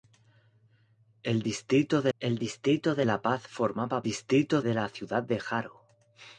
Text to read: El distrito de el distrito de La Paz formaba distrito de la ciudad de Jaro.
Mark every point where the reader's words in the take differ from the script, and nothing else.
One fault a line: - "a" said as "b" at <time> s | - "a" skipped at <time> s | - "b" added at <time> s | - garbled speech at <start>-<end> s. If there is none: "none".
none